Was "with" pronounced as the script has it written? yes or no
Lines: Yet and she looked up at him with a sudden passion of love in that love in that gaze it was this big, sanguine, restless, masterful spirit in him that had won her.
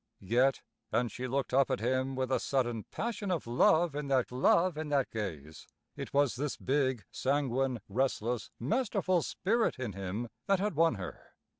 yes